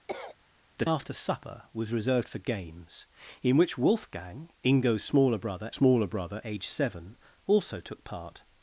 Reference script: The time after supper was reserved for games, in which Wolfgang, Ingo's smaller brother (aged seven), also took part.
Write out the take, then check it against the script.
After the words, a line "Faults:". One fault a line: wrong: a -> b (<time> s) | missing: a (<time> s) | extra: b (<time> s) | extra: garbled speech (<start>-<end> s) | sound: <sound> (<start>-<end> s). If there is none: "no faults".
The after supper was reserved for games, in which Wolfgang, Ingo's smaller brother smaller brother (aged seven), also took part.
Faults:
sound: cough (0.1-0.4 s)
missing: time (0.8 s)
extra: smaller brother (5.7 s)